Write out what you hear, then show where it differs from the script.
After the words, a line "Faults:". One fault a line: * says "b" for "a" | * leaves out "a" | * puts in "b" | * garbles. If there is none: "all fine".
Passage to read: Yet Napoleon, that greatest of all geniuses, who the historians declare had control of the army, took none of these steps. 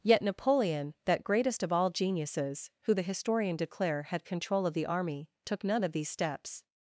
Yet Napoleon, that greatest of all geniuses, who the historian declare had control of the army, took none of these steps.
Faults:
* says "historian" for "historians"